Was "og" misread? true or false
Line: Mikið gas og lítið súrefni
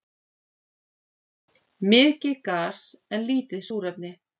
true